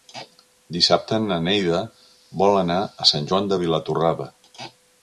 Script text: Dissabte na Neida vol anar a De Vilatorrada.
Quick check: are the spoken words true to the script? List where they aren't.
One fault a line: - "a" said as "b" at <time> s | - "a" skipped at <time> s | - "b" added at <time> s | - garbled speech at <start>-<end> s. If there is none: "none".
- "Sant Joan" added at 3.1 s